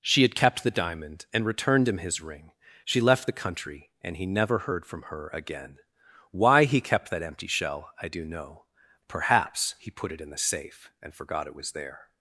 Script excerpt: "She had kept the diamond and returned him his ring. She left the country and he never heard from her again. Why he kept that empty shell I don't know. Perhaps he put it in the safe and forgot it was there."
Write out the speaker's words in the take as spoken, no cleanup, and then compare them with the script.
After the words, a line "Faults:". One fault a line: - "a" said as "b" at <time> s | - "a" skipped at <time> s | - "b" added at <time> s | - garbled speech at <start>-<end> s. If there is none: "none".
"She had kept the diamond and returned him his ring. She left the country and he never heard from her again. Why he kept that empty shell I do know. Perhaps he put it in the safe and forgot it was there."
Faults:
- "don't" said as "do" at 8.1 s